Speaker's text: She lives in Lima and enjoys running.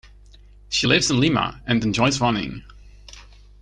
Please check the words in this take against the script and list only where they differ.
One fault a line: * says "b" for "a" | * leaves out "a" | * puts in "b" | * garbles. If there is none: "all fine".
all fine